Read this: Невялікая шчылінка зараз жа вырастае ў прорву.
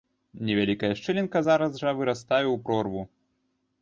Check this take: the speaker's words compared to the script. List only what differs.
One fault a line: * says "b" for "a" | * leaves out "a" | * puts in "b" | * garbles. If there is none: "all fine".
all fine